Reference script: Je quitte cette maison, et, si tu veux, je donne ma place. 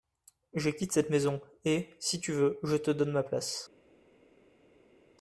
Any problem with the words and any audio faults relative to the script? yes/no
yes